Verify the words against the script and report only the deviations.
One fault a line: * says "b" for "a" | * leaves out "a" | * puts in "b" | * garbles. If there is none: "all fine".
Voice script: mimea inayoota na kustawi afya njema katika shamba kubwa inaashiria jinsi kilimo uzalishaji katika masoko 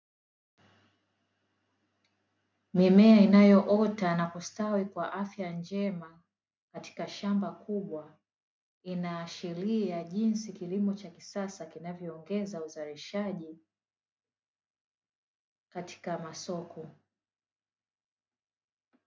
* puts in "kwa"
* puts in "cha kisasa kinavyoongeza"